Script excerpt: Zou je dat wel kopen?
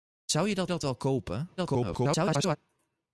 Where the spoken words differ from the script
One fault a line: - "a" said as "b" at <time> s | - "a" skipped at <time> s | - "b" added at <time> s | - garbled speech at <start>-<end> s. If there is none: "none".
- "dat" added at 0.7 s
- garbled speech at 1.6-2.6 s